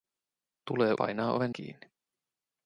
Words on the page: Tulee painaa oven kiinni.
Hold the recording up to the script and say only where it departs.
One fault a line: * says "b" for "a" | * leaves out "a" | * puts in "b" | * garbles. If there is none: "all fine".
all fine